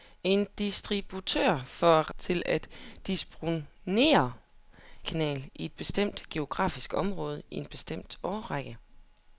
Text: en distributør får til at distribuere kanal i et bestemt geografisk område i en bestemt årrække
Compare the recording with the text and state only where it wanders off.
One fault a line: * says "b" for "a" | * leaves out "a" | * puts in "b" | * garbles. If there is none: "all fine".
all fine